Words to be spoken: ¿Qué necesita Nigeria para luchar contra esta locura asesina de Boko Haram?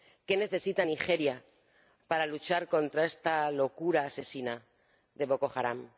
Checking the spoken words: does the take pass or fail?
pass